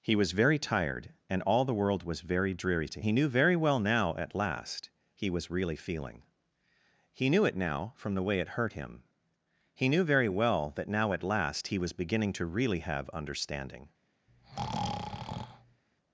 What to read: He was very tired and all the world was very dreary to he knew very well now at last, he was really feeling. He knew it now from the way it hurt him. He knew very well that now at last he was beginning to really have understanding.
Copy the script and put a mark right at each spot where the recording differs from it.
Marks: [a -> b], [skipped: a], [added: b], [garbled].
He was very tired and all the world was very dreary to he knew very well now at last, he was really feeling. He knew it now from the way it hurt him. He knew very well that now at last he was beginning to really have understanding.